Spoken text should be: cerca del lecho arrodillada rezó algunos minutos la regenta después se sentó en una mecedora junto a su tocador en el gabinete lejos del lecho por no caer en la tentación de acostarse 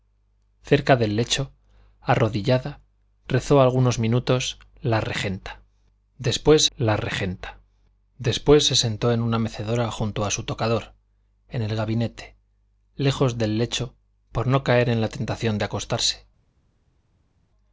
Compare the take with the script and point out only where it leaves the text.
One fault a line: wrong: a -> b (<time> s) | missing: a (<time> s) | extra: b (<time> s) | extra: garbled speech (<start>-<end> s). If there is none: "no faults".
extra: la regenta después (6.8 s)